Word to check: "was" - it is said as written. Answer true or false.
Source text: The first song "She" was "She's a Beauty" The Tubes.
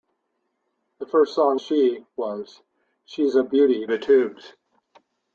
true